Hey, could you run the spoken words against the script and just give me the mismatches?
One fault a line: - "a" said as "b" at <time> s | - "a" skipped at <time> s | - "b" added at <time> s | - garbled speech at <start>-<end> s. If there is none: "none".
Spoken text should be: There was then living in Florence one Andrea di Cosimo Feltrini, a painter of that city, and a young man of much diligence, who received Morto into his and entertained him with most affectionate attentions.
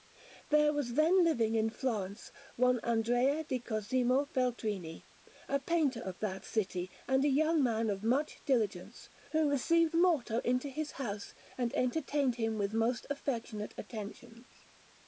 - "house" added at 10.9 s